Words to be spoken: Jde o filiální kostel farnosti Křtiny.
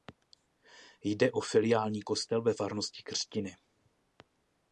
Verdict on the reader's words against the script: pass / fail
fail